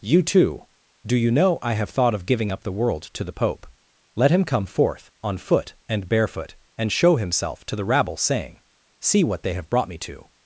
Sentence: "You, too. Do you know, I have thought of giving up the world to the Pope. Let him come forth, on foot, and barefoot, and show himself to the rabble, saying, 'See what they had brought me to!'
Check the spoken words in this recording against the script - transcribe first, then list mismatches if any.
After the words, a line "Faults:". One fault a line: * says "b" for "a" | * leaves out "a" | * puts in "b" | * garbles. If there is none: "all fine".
"You, too. Do you know, I have thought of giving up the world to the Pope. Let him come forth, on foot, and barefoot, and show himself to the rabble, saying, 'See what they have brought me to!'
Faults:
* says "have" for "had"